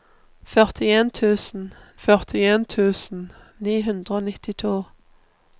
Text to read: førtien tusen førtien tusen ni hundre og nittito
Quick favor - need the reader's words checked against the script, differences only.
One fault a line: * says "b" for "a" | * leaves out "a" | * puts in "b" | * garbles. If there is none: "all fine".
all fine